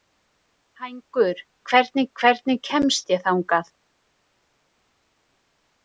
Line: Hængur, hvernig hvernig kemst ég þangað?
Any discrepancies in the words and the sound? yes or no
no